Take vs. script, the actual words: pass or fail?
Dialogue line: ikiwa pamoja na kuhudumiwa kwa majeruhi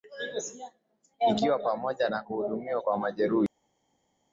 pass